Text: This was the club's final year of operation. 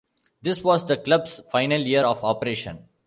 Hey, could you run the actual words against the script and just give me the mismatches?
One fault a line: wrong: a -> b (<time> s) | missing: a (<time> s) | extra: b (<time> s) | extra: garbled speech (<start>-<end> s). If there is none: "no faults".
no faults